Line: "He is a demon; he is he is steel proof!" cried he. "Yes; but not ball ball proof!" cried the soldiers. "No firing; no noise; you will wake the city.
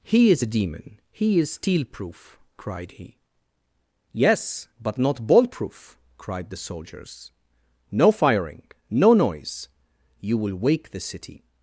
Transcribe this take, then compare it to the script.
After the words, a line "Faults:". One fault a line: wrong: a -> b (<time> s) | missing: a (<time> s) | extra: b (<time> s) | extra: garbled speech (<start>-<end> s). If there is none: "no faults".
"He is a demon; he is steel proof!" cried he. "Yes; but not ball proof!" cried the soldiers. "No firing; no noise; you will wake the city.
Faults:
missing: he is (1.5 s)
missing: ball (5.5 s)